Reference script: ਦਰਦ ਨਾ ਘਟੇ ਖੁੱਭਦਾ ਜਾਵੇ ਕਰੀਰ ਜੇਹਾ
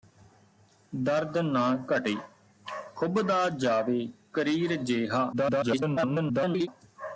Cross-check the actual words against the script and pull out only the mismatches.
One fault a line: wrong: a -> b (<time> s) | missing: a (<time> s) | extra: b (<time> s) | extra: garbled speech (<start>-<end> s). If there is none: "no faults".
extra: garbled speech (5.3-6.7 s)